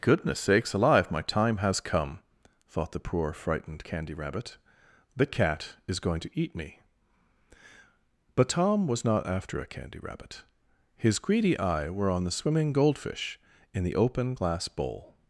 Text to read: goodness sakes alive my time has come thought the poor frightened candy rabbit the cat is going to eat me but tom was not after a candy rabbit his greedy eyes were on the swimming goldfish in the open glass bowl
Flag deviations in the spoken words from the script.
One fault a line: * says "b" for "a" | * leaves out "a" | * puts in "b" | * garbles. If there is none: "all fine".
* says "eye" for "eyes"